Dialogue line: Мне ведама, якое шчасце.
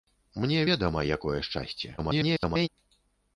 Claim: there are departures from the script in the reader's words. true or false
true